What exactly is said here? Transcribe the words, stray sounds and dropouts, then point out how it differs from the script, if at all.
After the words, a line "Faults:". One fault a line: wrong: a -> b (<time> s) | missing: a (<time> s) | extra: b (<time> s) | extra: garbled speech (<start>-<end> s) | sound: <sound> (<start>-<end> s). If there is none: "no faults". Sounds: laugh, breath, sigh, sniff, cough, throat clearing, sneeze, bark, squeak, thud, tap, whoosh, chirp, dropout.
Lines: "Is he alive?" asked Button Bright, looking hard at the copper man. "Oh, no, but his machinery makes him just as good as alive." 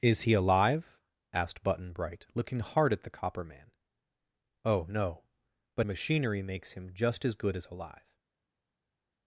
"Is he alive?" asked Button Bright, looking hard at the copper man. "Oh, no, but machinery makes him just as good as alive."
Faults:
missing: his (5.8 s)